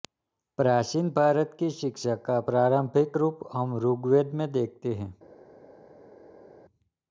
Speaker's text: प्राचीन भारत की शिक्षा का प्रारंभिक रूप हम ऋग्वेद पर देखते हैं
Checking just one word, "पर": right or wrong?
wrong